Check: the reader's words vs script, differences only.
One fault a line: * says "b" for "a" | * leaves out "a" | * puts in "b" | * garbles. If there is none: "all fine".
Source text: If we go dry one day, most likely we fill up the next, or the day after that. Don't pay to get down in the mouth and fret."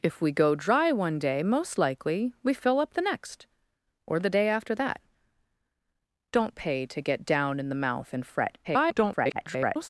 * garbles